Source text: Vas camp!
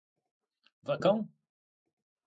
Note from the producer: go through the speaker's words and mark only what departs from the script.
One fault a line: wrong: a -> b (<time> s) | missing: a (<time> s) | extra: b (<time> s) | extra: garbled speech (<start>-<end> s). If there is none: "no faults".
no faults